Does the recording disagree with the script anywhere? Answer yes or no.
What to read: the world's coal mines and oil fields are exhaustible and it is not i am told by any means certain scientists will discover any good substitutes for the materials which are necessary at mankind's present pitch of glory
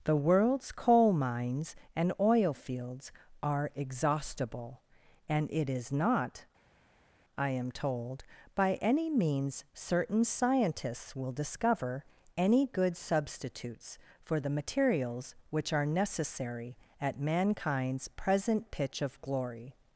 no